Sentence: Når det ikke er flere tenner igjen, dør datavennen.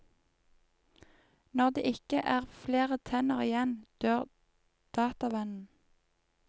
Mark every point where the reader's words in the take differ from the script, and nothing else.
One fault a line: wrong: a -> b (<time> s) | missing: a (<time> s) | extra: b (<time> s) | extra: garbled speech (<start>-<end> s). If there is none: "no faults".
no faults